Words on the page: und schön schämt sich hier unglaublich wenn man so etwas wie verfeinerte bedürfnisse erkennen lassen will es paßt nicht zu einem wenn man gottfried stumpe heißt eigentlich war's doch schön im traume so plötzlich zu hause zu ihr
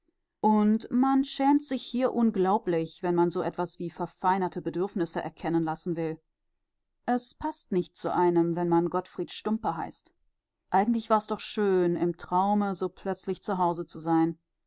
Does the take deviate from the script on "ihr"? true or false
true